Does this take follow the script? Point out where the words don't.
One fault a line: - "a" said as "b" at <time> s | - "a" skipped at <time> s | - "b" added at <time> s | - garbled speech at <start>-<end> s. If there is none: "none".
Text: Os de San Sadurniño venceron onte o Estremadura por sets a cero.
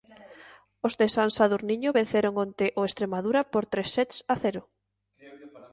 - "tres" added at 3.7 s